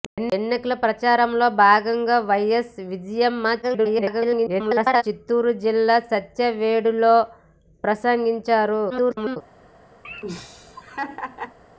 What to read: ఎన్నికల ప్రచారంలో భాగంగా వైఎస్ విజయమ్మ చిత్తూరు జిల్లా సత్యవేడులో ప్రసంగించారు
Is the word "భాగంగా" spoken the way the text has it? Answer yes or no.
yes